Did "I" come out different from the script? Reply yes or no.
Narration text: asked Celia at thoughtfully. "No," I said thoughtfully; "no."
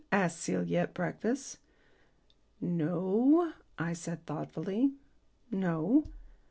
no